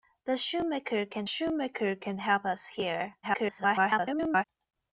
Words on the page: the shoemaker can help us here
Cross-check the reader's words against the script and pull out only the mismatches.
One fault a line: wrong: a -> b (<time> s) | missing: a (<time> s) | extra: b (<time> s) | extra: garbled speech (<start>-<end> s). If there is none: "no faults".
extra: shoemaker can (1.2 s)
extra: garbled speech (3.2-4.4 s)